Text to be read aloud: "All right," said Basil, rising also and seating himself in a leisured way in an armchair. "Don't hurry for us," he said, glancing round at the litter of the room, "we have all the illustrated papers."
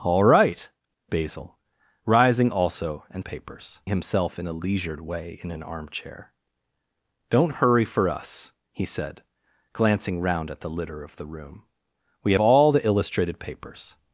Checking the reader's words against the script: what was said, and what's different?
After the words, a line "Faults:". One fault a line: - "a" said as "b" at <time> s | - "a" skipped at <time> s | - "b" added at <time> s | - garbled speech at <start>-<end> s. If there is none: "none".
"All right," Basil, rising also and papers himself in a leisured way in an armchair. "Don't hurry for us," he said, glancing round at the litter of the room, "we all the illustrated papers."
Faults:
- "said" skipped at 0.7 s
- "seating" said as "papers" at 3.2 s
- "have" skipped at 12.3 s